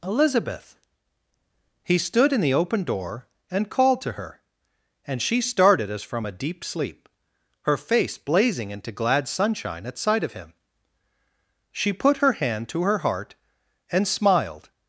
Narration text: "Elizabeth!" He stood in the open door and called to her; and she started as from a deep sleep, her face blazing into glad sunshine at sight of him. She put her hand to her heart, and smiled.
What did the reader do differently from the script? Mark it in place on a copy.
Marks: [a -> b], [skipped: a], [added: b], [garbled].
"Elizabeth!" He stood in the open door and called to her; and she started as from a deep sleep, her face blazing into glad sunshine at sight of him. She put her hand to her heart, and smiled.